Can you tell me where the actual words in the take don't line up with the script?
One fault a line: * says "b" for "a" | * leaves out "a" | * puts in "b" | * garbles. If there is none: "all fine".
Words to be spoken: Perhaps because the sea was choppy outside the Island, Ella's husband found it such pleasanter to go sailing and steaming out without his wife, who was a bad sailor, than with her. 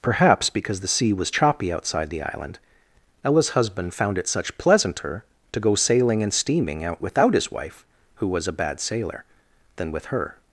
all fine